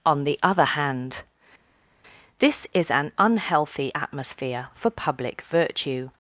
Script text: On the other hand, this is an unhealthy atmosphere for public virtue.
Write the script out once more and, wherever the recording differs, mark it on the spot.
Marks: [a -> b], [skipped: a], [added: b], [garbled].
On the other hand, this is an unhealthy atmosphere for public virtue.